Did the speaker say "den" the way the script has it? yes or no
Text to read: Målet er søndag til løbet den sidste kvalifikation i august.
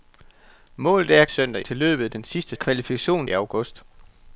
yes